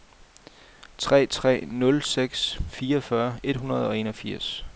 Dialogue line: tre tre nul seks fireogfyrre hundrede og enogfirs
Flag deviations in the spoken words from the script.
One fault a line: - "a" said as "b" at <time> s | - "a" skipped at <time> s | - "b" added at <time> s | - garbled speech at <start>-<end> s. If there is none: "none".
- "et" added at 3.4 s